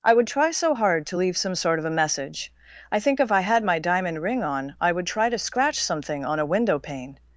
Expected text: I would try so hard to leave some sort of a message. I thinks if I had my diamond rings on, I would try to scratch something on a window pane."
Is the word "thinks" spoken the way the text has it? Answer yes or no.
no